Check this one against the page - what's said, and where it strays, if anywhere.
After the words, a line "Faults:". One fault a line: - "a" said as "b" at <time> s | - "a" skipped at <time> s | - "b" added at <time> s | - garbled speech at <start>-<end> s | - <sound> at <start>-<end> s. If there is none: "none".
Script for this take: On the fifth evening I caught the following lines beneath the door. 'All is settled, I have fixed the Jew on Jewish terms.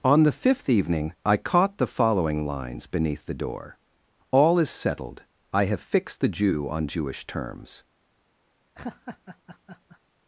On the fifth evening I caught the following lines beneath the door. 'All is settled, I have fixed the Jew on Jewish terms.
Faults:
- laugh at 8.8-10.0 s